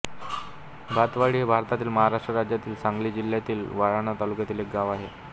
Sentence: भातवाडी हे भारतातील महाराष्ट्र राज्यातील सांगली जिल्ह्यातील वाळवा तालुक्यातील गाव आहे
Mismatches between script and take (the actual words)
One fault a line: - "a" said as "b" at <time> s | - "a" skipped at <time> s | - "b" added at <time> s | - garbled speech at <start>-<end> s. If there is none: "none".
- "एक" added at 4.6 s